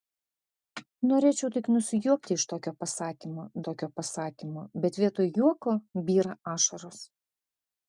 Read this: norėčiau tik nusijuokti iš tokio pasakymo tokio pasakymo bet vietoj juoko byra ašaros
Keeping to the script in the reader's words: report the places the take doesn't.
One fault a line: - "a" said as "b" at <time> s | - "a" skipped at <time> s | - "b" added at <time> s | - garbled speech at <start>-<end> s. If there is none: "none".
none